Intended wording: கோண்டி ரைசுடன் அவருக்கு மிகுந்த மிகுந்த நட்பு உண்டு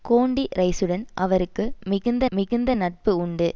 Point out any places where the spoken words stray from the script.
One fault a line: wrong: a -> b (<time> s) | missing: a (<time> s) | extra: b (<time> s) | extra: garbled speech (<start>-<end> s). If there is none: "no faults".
no faults